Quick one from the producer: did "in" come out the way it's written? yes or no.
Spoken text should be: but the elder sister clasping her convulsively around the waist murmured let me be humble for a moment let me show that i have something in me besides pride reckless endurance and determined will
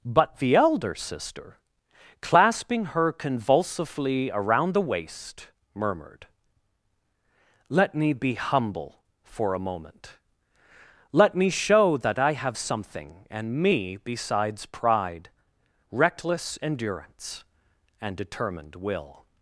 no